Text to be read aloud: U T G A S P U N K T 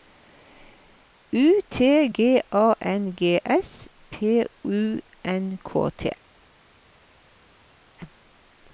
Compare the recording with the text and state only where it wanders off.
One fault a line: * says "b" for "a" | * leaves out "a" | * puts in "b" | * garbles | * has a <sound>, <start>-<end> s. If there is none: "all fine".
* puts in "N G"